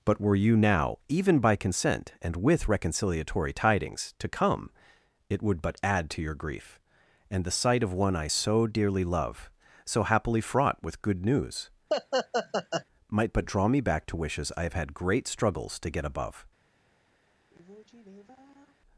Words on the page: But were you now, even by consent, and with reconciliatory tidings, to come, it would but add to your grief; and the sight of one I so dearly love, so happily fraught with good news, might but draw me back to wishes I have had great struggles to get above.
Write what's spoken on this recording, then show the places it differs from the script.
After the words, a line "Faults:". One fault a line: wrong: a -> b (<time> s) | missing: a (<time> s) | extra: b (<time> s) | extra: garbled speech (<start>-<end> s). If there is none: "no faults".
But were you now, even by consent, and with reconciliatory tidings, to come, it would but add to your grief; and the sight of one I so dearly love, so happily fraught with good news, might but draw me back to wishes I have had great struggles to get above.
Faults:
no faults